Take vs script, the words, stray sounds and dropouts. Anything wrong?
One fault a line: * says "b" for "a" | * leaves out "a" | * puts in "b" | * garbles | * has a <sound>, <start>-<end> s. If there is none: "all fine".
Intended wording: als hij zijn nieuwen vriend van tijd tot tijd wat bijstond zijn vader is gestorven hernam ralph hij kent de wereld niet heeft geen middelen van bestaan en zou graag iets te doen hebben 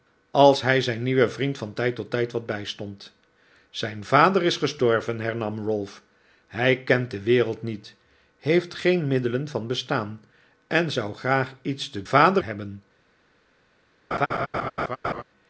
* says "vader" for "doen"
* has a laugh, 14.1-15.2 s